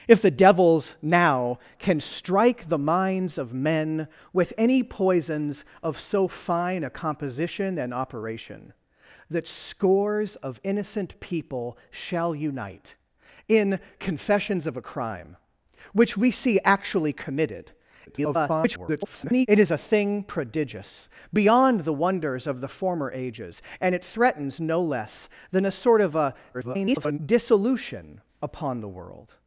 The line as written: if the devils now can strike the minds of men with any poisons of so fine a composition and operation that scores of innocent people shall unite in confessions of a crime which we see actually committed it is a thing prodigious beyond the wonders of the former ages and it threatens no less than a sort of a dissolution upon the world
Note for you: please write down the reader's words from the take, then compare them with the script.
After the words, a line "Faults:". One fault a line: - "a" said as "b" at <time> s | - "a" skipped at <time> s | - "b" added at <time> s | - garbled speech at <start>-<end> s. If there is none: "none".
if the devils now can strike the minds of men with any poisons of so fine a composition and operation that scores of innocent people shall unite in confessions of a crime which we see actually committed [garbled] it is a thing prodigious beyond the wonders of the former ages and it threatens no less than a sort of a [garbled] dissolution upon the world
Faults:
- garbled speech at 18.1-19.5 s
- garbled speech at 26.5-27.2 s